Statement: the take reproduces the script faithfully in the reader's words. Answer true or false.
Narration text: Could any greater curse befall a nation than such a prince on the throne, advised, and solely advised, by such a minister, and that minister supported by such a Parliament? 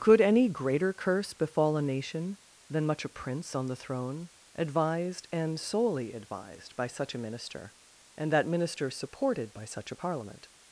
false